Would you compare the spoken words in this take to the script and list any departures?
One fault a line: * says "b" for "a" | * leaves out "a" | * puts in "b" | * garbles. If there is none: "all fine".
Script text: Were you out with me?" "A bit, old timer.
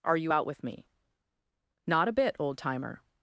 * says "Are" for "Were"
* puts in "Not"